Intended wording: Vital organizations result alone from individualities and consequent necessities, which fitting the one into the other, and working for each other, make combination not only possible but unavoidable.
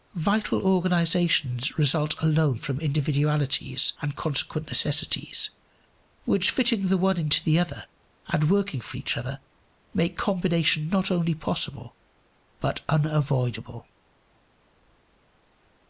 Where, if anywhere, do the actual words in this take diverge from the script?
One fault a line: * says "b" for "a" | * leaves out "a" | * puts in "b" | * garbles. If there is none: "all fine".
all fine